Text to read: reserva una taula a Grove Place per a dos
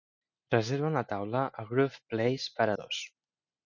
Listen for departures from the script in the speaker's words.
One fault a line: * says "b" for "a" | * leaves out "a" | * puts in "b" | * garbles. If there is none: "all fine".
all fine